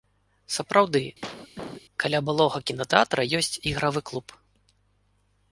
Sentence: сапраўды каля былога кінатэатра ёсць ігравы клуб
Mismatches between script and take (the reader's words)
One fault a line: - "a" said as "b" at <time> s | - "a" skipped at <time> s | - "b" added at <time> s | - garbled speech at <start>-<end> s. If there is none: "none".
none